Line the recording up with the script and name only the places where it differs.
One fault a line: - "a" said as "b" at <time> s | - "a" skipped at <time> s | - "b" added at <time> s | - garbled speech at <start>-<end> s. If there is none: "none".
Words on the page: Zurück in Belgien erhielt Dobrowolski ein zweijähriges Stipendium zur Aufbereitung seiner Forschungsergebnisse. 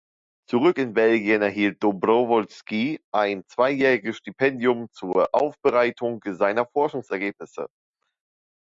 none